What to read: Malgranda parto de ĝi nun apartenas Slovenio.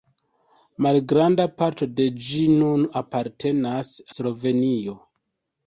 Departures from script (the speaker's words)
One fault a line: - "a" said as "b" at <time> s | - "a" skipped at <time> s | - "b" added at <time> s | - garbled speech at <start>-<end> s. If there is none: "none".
none